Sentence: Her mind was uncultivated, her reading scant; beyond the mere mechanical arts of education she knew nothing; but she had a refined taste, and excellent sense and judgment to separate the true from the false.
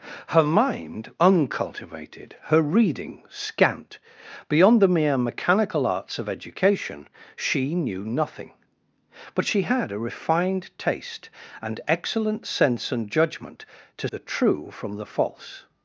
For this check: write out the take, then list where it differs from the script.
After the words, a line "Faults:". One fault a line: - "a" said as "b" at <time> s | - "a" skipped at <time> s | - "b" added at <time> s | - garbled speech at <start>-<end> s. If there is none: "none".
Her mind uncultivated, her reading scant; beyond the mere mechanical arts of education she knew nothing; but she had a refined taste, and excellent sense and judgment to the true from the false.
Faults:
- "was" skipped at 1.1 s
- "separate" skipped at 14.1 s